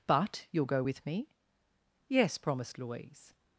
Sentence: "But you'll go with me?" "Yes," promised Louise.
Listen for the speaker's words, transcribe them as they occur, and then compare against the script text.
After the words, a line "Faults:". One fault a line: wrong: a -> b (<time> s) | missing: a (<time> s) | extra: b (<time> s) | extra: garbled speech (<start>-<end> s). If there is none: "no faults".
"But you'll go with me?" "Yes," promised Louise.
Faults:
no faults